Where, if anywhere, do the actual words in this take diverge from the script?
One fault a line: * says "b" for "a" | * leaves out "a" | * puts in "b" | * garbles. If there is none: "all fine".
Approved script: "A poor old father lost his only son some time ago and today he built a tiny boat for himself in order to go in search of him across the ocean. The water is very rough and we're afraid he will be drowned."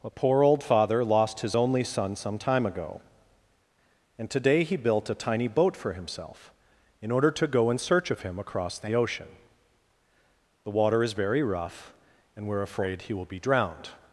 all fine